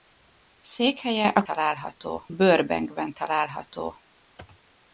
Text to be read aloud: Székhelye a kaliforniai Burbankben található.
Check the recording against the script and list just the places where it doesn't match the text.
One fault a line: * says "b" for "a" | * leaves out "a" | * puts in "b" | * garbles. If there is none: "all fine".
* says "található" for "kaliforniai"